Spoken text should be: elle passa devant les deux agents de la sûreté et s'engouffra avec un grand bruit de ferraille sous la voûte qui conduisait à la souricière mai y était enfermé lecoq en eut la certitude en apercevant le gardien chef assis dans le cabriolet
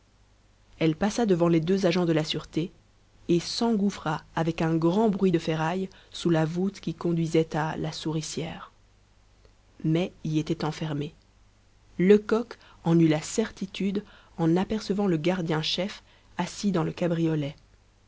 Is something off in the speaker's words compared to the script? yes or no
no